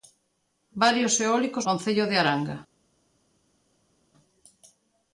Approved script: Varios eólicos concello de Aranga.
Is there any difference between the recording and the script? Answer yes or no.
no